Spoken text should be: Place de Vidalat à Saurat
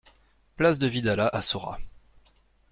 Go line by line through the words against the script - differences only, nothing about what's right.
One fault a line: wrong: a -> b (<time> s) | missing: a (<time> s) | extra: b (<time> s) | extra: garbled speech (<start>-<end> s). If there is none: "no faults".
no faults